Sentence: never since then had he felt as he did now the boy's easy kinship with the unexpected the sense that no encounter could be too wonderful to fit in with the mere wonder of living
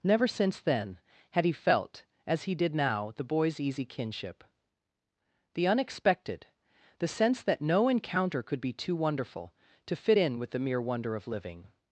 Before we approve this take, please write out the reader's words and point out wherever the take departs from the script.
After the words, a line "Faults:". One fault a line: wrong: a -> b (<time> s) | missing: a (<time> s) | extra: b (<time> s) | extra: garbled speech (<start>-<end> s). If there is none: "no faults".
never since then had he felt as he did now the boy's easy kinship the unexpected the sense that no encounter could be too wonderful to fit in with the mere wonder of living
Faults:
missing: with (4.4 s)